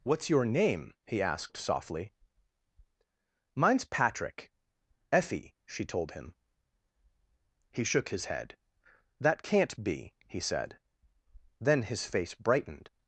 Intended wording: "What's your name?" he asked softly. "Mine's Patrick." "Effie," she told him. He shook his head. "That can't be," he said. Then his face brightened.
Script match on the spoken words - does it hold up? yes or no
yes